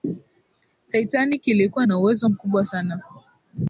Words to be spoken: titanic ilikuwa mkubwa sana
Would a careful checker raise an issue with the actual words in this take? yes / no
yes